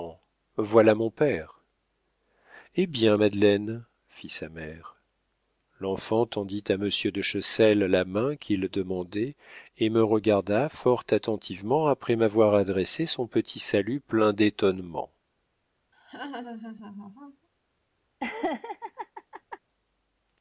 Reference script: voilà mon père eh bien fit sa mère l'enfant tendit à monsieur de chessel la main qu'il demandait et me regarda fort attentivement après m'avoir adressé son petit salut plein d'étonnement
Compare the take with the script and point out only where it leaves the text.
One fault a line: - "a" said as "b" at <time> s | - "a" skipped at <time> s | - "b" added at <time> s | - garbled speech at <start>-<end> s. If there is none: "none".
- "madeleine" added at 3.2 s